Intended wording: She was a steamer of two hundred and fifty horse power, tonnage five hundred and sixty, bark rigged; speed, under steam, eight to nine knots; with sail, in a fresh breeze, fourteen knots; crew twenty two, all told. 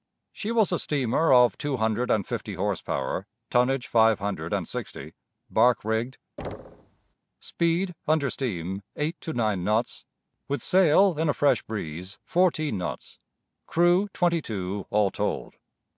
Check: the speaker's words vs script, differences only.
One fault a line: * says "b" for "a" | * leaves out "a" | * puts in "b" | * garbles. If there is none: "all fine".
all fine